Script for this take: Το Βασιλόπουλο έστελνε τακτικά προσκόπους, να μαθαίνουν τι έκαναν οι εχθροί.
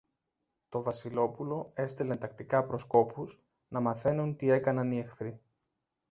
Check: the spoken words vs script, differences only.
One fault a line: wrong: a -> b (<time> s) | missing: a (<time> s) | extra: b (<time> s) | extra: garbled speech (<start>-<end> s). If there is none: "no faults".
no faults